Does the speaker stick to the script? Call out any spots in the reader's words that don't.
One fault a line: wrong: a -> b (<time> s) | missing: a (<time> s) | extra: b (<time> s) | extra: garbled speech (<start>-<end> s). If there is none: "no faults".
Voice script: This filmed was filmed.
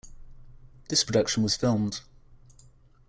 wrong: filmed -> production (1.0 s)